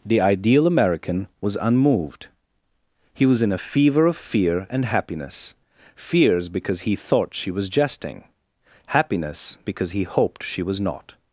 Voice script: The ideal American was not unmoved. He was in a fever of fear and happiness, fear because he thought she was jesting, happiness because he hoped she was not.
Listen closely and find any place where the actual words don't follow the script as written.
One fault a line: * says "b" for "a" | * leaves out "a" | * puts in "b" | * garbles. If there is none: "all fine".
* leaves out "not"
* says "fears" for "fear"